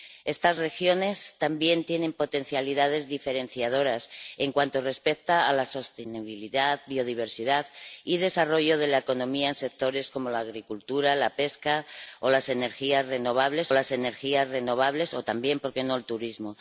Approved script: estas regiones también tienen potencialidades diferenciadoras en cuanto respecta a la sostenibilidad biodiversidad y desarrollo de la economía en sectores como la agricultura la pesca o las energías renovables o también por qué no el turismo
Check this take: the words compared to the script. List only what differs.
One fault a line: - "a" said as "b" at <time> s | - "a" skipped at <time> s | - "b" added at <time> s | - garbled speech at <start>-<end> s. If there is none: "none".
- "las energías renovables" added at 13.7 s